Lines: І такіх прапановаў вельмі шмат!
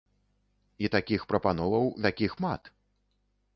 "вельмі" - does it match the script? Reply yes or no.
no